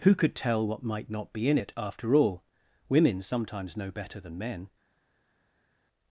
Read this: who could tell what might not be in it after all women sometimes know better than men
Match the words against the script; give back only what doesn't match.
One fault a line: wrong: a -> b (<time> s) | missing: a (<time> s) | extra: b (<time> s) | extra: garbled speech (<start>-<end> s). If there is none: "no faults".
no faults